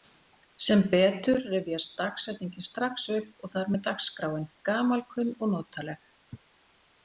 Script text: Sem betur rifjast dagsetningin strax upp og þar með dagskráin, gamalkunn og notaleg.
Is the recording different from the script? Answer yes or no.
no